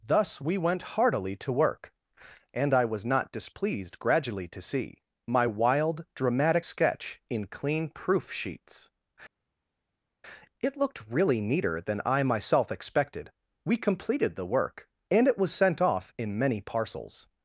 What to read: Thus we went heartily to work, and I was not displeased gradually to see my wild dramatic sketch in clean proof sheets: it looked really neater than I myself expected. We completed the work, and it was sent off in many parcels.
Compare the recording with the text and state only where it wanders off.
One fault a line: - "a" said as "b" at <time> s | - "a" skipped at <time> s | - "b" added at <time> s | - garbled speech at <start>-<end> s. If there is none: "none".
none